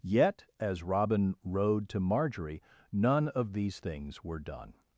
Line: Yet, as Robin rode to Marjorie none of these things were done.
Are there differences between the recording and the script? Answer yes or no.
no